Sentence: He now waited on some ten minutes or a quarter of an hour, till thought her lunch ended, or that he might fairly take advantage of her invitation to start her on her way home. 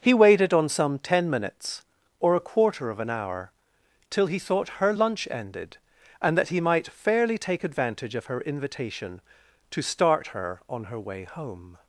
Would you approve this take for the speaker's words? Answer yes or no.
no